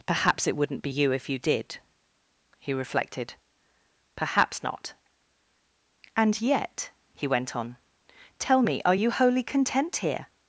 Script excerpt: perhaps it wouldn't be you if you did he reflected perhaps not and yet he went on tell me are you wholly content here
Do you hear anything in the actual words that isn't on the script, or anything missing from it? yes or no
no